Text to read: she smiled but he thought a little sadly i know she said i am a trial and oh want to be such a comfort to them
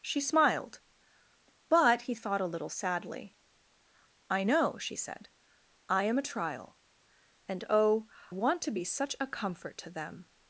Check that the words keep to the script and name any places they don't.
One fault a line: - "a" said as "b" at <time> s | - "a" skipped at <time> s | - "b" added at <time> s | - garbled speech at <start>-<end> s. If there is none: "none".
none